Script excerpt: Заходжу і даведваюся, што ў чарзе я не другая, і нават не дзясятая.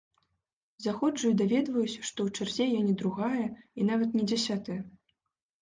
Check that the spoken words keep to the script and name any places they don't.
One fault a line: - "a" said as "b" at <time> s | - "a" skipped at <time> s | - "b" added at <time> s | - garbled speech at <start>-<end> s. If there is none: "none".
none